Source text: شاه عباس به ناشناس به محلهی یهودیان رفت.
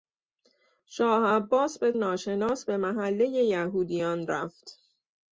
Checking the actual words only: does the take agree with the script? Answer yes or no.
yes